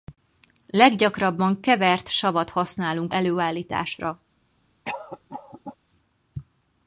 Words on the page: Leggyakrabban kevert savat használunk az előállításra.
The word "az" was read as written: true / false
false